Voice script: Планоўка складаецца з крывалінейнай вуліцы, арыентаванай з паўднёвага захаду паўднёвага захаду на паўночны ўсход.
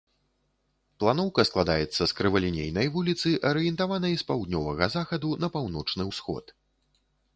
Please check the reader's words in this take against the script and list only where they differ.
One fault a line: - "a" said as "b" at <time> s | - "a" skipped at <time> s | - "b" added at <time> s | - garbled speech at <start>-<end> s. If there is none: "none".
- "паўднёвага захаду" skipped at 5.3 s